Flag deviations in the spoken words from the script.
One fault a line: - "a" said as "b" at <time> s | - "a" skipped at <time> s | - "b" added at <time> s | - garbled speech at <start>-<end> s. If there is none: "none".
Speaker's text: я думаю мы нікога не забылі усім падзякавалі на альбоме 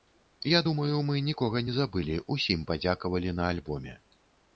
none